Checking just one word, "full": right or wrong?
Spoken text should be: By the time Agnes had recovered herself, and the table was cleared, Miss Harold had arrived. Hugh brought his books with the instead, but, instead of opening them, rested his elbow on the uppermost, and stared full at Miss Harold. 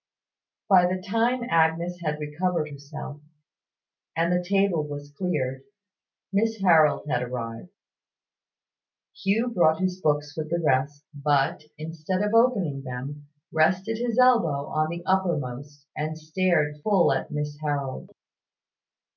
right